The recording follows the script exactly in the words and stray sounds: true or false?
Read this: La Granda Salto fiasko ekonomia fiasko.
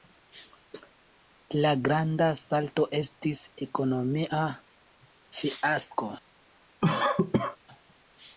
false